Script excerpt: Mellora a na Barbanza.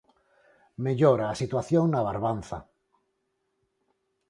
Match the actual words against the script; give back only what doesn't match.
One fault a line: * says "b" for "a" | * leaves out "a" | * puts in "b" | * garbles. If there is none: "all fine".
* puts in "situación"